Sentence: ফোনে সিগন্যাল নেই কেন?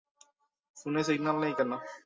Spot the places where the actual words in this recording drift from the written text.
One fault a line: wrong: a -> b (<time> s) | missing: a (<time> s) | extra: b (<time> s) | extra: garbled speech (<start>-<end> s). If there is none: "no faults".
no faults